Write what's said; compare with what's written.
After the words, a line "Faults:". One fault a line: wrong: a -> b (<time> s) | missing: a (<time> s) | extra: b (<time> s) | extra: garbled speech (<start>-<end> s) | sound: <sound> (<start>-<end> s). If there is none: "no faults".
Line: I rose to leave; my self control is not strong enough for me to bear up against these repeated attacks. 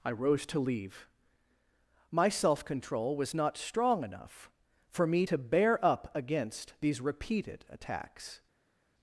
I rose to leave; my self control was not strong enough for me to bear up against these repeated attacks.
Faults:
wrong: is -> was (3.1 s)